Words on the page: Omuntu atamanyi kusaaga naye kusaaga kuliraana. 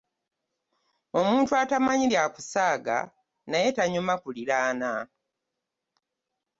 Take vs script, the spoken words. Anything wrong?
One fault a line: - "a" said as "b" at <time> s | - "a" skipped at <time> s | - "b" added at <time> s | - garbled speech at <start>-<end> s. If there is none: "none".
- "bya" added at 2.1 s
- "kusaaga" said as "tanyuma" at 3.8 s